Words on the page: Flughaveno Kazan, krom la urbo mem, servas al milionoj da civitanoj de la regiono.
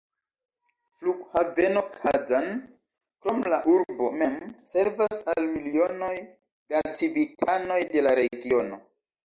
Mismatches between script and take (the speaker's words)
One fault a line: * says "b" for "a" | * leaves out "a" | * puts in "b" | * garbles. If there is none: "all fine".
all fine